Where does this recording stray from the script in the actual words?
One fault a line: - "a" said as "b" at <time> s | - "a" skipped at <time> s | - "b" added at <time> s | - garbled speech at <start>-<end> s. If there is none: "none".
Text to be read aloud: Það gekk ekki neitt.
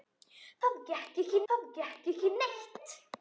- "það gekk ekki" added at 1.5 s